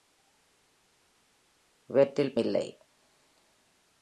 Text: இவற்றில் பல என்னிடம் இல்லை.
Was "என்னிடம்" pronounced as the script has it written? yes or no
no